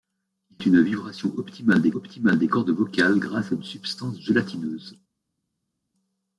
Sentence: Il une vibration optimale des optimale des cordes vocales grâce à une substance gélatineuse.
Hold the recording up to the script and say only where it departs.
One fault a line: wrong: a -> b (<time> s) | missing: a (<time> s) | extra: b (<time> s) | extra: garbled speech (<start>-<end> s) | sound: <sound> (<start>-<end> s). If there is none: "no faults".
no faults